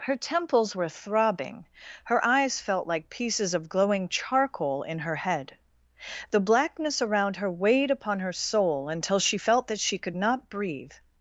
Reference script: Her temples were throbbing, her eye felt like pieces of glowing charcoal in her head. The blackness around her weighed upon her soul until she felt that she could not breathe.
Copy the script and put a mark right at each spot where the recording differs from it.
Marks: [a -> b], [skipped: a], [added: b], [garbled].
Her temples were throbbing, her [eye -> eyes] felt like pieces of glowing charcoal in her head. The blackness around her weighed upon her soul until she felt that she could not breathe.